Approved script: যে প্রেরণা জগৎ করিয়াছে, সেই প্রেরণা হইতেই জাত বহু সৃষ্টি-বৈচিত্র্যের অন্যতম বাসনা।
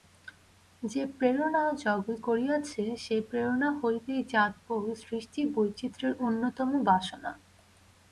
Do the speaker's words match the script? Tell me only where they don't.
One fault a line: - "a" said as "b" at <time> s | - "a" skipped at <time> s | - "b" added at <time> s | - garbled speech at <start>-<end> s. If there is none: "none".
none